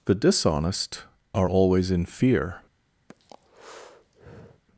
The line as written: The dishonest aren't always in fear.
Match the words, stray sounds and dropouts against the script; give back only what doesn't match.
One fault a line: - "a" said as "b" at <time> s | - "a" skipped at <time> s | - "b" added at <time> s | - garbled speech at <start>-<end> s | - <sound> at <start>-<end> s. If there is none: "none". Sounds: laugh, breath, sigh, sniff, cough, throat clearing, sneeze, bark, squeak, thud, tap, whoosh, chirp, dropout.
- "aren't" said as "are" at 1.4 s
- breath at 3.1-4.6 s